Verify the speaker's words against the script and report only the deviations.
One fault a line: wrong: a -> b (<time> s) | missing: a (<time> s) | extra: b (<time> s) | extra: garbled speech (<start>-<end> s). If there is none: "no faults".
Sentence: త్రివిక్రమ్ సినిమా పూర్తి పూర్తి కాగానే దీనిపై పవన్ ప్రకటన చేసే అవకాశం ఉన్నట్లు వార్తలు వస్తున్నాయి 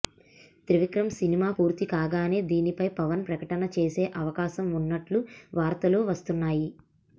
missing: పూర్తి (1.8 s)